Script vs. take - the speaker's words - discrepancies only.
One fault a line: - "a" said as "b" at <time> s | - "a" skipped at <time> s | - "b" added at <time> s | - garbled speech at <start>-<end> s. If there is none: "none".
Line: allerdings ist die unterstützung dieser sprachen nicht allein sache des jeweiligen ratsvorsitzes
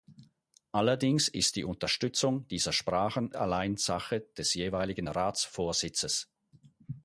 - "nicht" skipped at 3.3 s